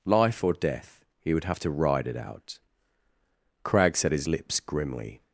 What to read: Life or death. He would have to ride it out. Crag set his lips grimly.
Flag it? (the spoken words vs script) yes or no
no